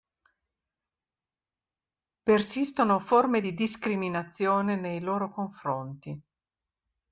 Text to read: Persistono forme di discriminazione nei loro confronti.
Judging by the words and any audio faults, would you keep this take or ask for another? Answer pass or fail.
pass